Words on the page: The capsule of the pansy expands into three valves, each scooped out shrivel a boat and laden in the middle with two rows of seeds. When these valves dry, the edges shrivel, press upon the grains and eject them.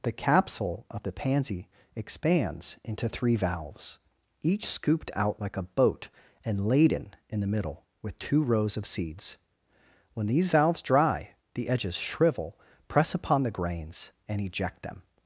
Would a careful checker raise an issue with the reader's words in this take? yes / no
yes